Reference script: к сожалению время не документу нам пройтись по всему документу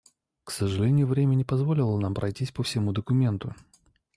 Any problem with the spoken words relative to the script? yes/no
yes